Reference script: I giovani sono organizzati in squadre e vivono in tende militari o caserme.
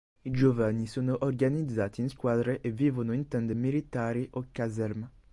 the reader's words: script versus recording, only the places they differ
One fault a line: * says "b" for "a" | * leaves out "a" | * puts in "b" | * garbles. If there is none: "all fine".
all fine